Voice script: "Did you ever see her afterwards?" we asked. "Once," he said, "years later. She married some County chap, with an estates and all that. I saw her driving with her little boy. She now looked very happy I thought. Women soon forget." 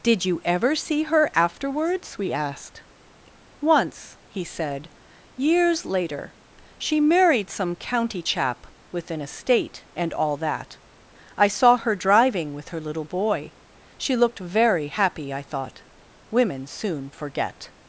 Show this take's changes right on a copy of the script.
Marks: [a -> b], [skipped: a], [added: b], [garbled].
"Did you ever see her afterwards?" we asked. "Once," he said, "years later. She married some County chap, with an [estates -> estate] and all that. I saw her driving with her little boy. She [skipped: now] looked very happy I thought. Women soon forget."